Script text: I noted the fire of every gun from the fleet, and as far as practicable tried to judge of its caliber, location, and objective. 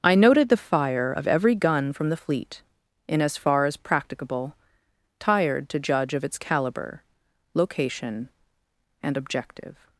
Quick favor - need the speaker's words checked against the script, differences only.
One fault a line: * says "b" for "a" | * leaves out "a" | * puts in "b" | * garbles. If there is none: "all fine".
* says "in" for "and"
* says "tired" for "tried"